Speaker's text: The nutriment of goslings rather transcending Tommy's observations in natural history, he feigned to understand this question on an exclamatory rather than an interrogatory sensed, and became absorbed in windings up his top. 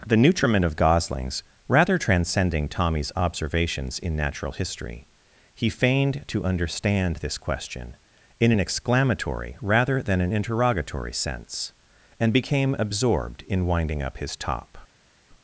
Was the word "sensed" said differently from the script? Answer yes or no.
yes